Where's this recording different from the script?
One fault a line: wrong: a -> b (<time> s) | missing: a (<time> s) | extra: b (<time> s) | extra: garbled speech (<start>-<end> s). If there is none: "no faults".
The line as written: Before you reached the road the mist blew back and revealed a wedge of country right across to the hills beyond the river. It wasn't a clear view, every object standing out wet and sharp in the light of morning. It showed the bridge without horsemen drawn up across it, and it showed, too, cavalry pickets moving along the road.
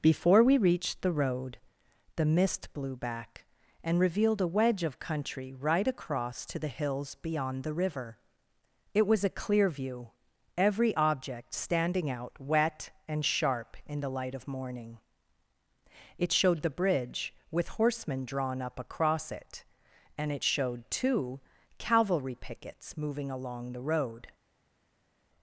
wrong: you -> we (0.4 s)
wrong: wasn't -> was (9.1 s)
wrong: without -> with (17.5 s)